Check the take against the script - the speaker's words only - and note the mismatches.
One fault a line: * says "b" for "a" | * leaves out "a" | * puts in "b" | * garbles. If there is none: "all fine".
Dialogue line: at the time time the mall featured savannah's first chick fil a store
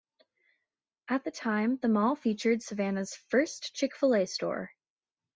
* leaves out "time"